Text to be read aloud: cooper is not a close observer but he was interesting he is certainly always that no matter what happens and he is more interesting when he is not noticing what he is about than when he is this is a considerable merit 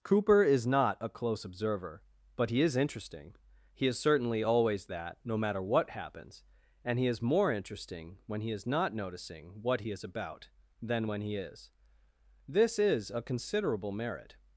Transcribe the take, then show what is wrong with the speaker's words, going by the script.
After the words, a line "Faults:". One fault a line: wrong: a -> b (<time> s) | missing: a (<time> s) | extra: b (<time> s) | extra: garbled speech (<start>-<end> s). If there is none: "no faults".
cooper is not a close observer but he is interesting he is certainly always that no matter what happens and he is more interesting when he is not noticing what he is about than when he is this is a considerable merit
Faults:
wrong: was -> is (2.6 s)